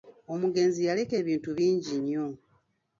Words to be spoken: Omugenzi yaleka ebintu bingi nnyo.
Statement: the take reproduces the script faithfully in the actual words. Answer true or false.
true